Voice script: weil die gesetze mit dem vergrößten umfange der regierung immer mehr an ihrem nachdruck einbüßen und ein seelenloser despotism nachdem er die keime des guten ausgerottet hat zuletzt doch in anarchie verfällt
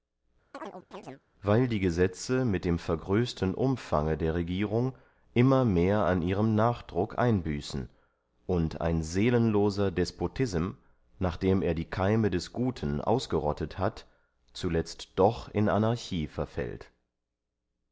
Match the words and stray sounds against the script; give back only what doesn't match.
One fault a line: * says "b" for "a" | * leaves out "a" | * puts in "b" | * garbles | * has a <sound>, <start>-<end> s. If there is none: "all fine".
* has a chirp, 0.5-1.2 s